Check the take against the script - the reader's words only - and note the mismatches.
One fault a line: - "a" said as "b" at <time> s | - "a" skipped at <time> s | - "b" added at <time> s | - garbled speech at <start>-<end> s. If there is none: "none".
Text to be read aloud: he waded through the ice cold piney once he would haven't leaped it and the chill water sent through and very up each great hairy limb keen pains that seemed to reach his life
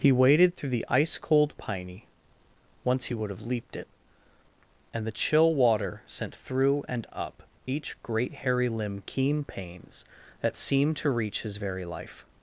- "haven't" said as "have" at 3.3 s
- "very" skipped at 7.0 s
- "very" added at 11.5 s